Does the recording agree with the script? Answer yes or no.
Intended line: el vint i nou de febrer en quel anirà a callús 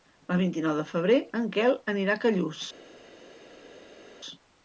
yes